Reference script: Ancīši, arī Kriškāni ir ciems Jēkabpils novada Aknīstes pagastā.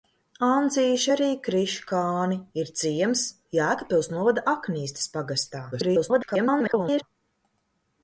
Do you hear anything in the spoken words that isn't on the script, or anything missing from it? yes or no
yes